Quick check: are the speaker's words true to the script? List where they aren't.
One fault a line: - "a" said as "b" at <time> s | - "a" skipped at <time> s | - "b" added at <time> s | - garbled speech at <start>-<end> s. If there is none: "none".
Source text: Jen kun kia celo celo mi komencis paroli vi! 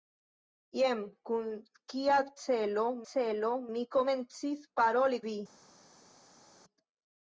none